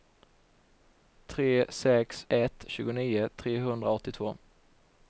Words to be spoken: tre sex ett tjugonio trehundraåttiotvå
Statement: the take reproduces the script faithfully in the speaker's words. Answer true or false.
true